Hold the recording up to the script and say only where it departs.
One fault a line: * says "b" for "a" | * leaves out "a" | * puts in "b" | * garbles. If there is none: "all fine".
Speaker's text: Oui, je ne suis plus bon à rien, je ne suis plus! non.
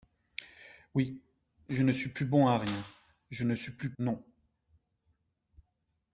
all fine